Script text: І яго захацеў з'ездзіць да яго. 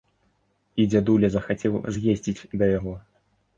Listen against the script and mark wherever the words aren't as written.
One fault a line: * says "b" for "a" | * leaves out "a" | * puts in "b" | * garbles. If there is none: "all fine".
* says "дзядуля" for "яго"